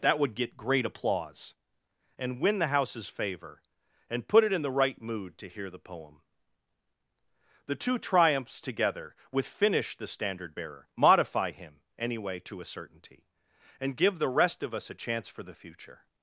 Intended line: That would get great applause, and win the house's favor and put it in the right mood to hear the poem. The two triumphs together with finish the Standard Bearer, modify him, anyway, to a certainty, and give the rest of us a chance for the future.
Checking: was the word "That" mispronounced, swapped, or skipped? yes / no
no